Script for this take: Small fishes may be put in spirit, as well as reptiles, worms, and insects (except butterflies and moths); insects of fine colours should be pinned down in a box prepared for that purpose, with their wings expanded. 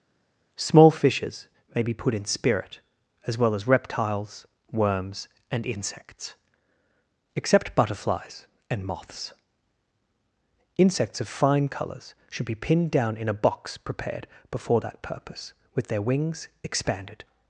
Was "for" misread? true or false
true